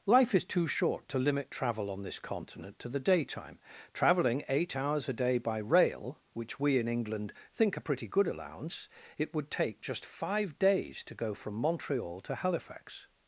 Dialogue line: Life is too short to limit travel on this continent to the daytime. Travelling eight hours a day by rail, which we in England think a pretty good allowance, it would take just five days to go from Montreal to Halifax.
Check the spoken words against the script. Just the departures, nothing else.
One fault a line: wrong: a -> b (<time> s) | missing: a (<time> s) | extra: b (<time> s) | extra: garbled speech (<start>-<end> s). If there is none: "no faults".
no faults